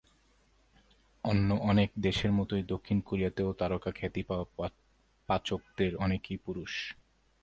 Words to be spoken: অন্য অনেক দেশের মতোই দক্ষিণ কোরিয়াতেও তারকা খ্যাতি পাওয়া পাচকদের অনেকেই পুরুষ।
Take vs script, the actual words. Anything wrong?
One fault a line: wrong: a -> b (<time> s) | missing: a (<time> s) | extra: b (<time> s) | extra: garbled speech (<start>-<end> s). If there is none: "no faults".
no faults